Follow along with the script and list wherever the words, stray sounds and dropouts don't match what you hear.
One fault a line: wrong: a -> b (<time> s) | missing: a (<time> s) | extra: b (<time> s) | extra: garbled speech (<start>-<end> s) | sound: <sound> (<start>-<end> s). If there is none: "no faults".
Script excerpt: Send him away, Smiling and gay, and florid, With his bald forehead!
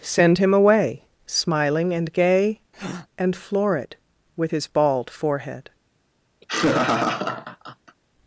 sound: breath (2.7-3.1 s)
sound: laugh (6.4-8.0 s)